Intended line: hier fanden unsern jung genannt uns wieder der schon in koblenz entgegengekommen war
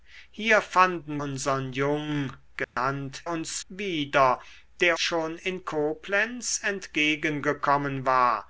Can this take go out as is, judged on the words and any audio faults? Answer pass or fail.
fail